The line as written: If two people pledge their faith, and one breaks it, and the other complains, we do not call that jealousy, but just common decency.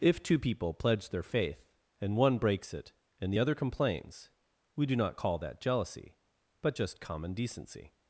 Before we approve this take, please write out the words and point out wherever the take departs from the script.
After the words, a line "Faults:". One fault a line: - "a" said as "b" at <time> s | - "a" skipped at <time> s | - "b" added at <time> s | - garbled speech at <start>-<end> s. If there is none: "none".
If two people pledge their faith, and one breaks it, and the other complains, we do not call that jealousy, but just common decency.
Faults:
none